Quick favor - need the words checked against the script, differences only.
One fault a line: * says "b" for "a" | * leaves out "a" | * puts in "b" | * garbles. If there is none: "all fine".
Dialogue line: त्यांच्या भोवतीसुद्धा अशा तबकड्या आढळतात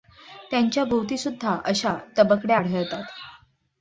all fine